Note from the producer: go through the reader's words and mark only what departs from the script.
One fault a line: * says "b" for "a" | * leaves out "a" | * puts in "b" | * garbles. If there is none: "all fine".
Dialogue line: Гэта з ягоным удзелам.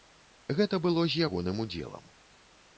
* puts in "было"